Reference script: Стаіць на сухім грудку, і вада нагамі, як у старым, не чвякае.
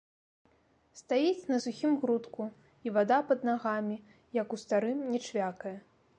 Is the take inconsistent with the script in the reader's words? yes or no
yes